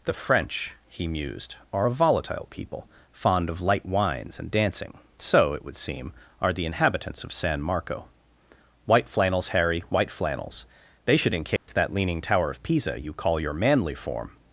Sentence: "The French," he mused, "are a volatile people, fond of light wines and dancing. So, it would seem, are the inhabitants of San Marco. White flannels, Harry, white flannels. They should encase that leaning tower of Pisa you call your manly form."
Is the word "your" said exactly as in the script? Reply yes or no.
yes